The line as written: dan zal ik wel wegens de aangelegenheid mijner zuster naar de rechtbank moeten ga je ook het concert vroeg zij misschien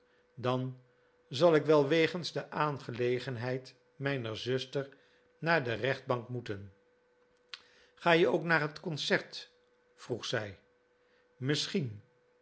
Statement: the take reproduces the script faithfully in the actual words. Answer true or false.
false